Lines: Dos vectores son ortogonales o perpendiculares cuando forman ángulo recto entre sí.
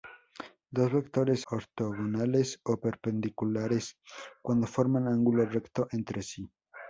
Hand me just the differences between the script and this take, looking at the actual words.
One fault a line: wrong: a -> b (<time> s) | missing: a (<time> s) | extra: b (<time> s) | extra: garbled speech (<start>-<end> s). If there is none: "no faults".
missing: son (1.4 s)